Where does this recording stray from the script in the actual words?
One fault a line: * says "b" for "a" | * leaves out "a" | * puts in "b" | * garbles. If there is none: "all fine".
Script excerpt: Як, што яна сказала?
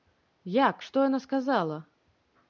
all fine